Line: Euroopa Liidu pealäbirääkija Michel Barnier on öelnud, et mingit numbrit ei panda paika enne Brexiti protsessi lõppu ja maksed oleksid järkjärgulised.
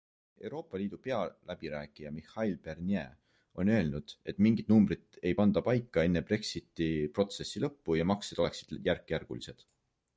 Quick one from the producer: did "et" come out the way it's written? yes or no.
yes